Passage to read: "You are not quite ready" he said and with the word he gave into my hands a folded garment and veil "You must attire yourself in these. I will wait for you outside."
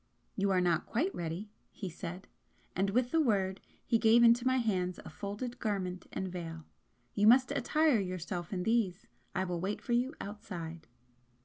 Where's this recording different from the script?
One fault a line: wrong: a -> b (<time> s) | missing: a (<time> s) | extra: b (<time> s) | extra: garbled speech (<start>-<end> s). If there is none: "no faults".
no faults